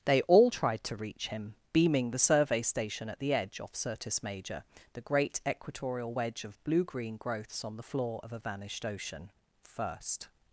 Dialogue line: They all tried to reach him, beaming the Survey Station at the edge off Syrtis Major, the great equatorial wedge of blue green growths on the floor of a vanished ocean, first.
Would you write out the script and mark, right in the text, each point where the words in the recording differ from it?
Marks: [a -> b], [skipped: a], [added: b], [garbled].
They all tried to reach him, beaming the Survey Station at the edge off Syrtis Major, the great equatorial wedge of blue green growths on the floor of a vanished ocean, first.